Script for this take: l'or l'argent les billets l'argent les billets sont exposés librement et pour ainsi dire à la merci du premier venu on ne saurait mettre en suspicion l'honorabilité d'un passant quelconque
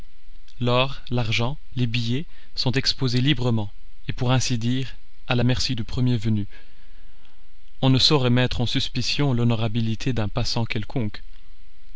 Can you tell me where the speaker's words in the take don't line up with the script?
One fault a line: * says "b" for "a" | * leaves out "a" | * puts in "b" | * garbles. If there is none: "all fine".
* leaves out "l'argent les billets"